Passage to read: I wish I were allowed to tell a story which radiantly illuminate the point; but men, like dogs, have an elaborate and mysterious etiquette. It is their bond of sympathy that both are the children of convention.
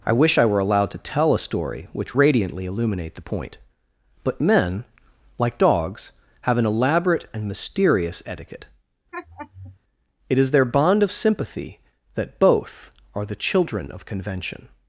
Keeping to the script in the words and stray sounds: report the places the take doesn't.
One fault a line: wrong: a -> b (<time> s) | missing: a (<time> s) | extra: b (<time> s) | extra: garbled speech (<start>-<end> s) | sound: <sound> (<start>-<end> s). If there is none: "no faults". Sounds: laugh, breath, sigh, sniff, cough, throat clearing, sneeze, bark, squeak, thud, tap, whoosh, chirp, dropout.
sound: laugh (9.1-9.8 s)